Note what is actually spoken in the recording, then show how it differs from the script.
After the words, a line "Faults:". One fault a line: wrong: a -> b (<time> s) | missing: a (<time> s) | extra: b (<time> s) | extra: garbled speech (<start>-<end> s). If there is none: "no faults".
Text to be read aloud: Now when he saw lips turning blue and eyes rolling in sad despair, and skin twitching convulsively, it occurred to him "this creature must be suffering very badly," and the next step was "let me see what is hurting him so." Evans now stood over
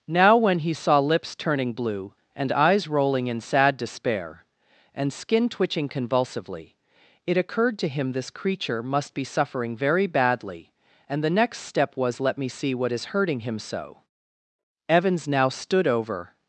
Now when he saw lips turning blue and eyes rolling in sad despair, and skin twitching convulsively, it occurred to him "this creature must be suffering very badly," and the next step was "let me see what is hurting him so." Evans now stood over
Faults:
no faults